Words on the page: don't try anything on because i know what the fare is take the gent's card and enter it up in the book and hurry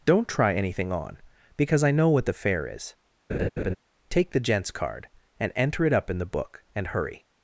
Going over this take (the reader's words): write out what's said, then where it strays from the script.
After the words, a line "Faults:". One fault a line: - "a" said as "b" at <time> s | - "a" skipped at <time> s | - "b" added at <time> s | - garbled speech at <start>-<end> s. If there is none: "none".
don't try anything on because i know what the fare is take the gent's card and enter it up in the book and hurry
Faults:
none